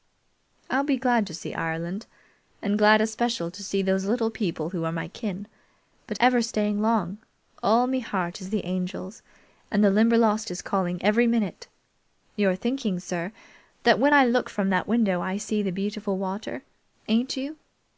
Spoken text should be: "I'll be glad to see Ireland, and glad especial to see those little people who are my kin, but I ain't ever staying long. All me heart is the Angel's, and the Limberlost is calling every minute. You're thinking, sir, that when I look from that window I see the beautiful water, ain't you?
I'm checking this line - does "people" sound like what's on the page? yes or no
yes